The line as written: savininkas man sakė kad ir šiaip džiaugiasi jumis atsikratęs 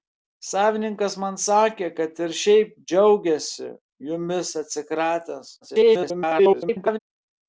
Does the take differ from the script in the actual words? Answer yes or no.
yes